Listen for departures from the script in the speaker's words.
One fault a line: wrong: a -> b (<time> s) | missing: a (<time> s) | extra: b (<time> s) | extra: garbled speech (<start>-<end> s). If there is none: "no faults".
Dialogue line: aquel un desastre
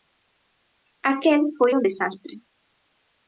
extra: foi (1.6 s)